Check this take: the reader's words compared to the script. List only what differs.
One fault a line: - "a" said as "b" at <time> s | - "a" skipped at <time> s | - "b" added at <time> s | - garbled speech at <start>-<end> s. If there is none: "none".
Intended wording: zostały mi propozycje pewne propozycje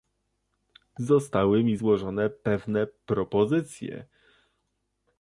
- "propozycje" said as "złożone" at 1.7 s